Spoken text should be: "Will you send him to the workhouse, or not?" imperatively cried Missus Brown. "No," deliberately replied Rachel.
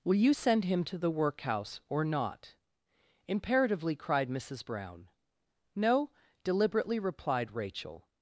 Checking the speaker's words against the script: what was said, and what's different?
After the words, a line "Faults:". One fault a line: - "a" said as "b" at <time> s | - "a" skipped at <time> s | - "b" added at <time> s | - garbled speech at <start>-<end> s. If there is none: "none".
"Will you send him to the workhouse, or not?" imperatively cried Missus Brown. "No," deliberately replied Rachel.
Faults:
none